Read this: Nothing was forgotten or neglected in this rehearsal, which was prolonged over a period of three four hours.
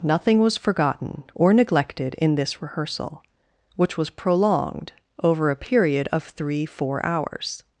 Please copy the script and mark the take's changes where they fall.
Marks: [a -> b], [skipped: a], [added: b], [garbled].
Nothing was forgotten or neglected in this rehearsal, which was prolonged over a period of three four hours.